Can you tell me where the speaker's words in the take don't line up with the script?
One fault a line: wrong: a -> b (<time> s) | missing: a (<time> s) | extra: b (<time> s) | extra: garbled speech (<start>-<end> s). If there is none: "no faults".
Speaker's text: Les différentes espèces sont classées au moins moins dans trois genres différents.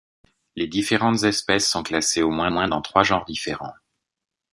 no faults